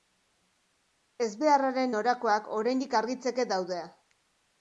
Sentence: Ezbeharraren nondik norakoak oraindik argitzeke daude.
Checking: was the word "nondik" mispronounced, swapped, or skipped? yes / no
yes